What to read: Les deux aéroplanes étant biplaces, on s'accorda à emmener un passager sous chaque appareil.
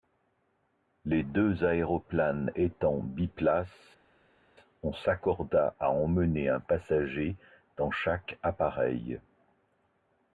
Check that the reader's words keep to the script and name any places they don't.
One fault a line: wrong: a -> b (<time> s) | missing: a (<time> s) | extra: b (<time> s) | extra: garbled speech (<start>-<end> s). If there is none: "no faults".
wrong: sous -> dans (7.8 s)